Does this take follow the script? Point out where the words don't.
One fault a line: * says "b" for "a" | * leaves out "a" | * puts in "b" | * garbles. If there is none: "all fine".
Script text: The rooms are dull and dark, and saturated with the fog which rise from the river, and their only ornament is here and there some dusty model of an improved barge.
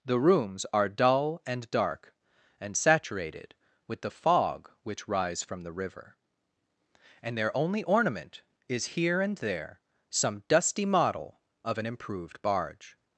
all fine